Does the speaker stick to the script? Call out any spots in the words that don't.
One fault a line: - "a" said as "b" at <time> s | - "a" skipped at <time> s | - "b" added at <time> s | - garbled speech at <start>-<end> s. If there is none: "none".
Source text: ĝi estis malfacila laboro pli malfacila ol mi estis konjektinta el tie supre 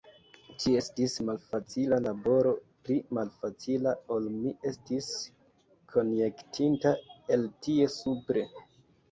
none